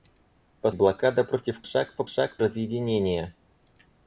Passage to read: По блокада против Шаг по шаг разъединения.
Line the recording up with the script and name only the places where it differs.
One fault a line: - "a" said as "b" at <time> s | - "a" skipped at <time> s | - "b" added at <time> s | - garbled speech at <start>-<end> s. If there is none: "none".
none